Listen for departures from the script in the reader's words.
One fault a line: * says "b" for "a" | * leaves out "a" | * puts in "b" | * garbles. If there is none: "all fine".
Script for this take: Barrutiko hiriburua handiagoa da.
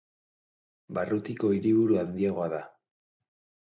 all fine